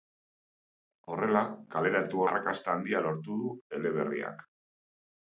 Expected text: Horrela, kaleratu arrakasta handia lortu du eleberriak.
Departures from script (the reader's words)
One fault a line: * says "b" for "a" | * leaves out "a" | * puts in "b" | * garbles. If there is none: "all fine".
all fine